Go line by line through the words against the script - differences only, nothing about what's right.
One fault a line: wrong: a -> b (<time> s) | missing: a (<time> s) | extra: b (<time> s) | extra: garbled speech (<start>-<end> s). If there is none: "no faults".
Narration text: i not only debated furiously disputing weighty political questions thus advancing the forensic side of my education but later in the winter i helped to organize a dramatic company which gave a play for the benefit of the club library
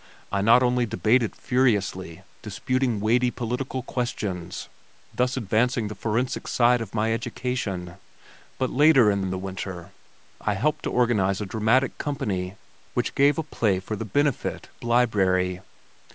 extra: in (9.2 s)
missing: of the club (14.7 s)